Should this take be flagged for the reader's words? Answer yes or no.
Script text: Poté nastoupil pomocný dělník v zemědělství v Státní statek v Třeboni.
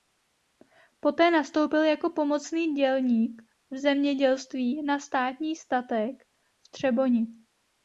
yes